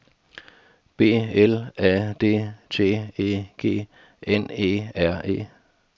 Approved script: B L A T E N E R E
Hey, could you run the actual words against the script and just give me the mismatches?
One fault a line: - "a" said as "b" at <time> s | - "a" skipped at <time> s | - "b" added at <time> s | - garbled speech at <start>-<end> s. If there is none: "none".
- "D" added at 2.2 s
- "G" added at 3.5 s